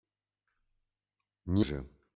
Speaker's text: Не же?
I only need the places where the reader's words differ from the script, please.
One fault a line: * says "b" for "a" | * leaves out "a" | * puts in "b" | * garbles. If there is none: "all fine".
all fine